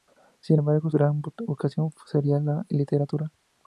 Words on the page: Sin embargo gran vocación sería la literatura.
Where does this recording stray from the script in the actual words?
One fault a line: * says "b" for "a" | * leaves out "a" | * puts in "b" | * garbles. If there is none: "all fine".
all fine